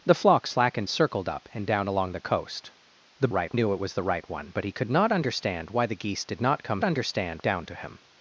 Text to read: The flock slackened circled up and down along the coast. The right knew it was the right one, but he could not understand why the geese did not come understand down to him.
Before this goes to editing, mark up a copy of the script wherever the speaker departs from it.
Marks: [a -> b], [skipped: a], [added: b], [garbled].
The flock slackened circled up and down along the coast. The right knew it was the right one, but he could not understand why the geese did not come understand down to him.